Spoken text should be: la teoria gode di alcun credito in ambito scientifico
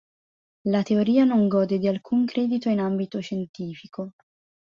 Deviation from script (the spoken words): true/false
true